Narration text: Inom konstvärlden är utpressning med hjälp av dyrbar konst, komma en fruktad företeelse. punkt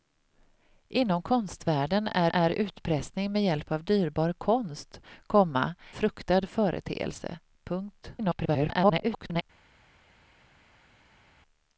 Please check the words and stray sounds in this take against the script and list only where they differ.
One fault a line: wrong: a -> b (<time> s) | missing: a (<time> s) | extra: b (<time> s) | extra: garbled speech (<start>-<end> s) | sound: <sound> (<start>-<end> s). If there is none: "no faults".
extra: är (2.3 s)
missing: en (5.8 s)
extra: garbled speech (8.2-9.4 s)